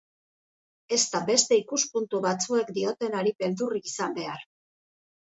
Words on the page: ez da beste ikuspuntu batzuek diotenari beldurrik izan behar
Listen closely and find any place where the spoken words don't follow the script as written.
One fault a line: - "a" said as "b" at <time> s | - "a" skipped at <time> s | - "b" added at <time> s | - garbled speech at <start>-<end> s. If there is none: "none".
none